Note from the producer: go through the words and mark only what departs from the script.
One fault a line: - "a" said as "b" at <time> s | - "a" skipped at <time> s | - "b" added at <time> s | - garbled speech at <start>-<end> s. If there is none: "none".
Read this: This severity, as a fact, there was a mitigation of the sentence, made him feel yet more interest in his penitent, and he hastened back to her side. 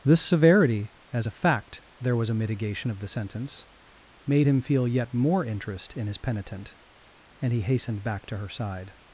none